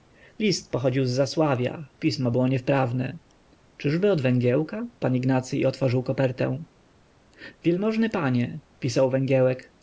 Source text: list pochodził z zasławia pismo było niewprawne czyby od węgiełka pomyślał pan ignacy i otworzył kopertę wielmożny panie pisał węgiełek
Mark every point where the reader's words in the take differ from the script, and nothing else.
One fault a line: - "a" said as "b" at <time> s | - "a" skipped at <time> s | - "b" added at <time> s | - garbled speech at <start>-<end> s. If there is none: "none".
- "pomyślał" skipped at 4.9 s